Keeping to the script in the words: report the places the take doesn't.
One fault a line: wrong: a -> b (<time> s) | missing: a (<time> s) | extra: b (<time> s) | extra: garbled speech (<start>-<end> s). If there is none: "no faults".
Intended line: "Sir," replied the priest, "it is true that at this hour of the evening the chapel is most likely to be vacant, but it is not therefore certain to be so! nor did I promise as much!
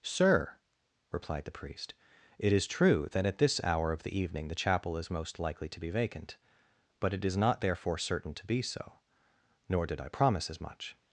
no faults